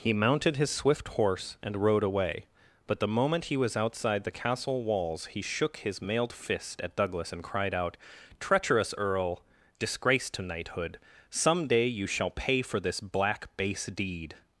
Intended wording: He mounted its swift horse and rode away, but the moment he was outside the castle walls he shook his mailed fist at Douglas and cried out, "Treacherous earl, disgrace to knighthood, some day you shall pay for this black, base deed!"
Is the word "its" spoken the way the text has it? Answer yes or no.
no